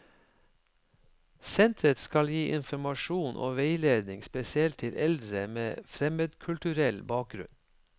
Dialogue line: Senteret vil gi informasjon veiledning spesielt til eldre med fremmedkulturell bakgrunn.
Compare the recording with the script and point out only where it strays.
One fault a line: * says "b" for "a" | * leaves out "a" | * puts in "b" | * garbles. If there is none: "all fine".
* says "skal" for "vil"
* puts in "og"